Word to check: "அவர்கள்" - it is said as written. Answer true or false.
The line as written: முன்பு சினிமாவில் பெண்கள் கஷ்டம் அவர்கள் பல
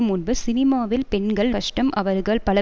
true